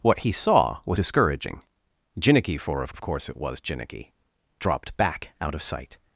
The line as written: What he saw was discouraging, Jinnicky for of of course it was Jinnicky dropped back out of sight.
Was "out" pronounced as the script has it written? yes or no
yes